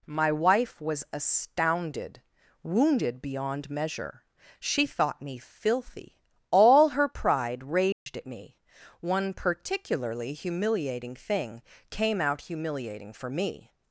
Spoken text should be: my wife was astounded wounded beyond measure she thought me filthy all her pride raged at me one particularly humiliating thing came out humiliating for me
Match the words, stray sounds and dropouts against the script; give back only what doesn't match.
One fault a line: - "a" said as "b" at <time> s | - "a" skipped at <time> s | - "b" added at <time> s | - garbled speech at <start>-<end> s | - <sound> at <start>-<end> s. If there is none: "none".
- dropout at 7.9-8.1 s